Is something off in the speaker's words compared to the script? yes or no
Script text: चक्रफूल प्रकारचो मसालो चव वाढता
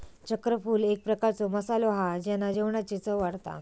yes